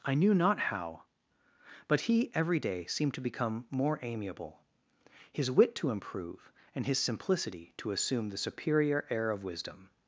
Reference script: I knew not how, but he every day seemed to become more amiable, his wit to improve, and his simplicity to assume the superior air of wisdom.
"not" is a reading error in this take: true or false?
false